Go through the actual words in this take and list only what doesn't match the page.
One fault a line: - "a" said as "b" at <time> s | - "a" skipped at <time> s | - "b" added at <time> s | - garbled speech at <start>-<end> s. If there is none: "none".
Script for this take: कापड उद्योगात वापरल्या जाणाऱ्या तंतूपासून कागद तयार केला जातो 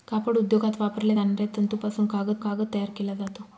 - "कागद" added at 2.4 s